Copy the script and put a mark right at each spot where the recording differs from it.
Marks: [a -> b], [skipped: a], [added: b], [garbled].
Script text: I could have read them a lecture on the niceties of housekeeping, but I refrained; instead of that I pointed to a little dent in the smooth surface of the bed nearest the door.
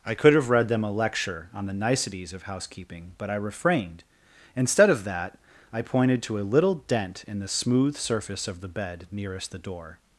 I could have read them a lecture on the niceties of housekeeping, but I refrained; instead of that I pointed to a little dent in the smooth surface of the bed nearest the door.